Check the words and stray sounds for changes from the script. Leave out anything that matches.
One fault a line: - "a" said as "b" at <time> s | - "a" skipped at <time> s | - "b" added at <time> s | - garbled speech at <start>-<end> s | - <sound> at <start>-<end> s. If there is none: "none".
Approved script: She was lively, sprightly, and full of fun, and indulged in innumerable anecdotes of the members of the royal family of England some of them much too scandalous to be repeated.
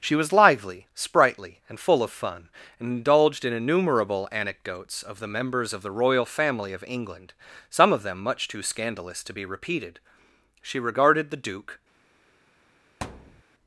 - "She regarded the Duke" added at 10.6 s
- thud at 13.0-13.4 s